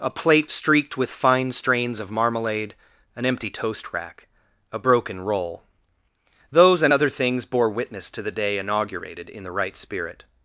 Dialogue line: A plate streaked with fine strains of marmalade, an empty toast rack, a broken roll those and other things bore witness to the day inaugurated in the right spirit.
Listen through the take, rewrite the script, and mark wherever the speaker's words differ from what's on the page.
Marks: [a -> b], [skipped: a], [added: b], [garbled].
A plate streaked with fine strains of marmalade, an empty toast rack, a broken roll those and other things bore witness to the day inaugurated in the right spirit.